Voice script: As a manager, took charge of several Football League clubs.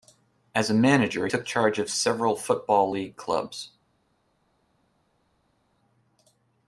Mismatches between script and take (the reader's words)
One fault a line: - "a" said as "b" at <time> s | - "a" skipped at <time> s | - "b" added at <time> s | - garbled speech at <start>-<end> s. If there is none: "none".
none